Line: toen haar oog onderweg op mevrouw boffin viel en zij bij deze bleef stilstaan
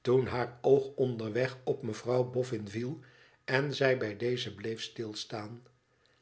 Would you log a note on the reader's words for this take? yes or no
no